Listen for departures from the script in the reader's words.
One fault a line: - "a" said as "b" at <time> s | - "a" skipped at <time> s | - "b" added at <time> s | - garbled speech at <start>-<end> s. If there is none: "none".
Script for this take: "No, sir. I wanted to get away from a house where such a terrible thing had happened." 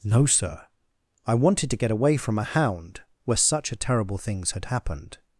- "house" said as "hound" at 2.4 s
- "thing" said as "things" at 4.2 s